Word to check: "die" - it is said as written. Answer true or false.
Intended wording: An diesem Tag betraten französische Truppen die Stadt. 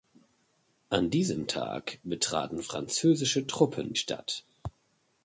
false